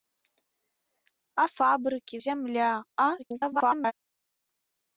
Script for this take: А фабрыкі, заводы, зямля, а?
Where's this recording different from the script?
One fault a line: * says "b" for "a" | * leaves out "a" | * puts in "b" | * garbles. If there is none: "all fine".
* leaves out "заводы"
* garbles